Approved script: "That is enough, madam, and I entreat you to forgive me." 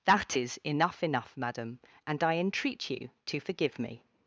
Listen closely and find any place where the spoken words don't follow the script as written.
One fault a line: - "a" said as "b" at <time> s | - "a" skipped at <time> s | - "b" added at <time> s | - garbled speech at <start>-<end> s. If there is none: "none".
- "enough" added at 1.0 s